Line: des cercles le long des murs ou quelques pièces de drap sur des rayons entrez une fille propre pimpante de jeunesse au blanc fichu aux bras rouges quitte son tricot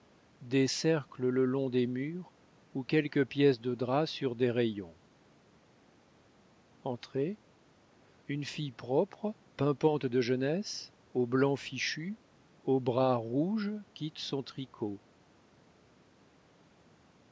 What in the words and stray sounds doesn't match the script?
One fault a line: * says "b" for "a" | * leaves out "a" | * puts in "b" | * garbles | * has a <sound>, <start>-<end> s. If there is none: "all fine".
all fine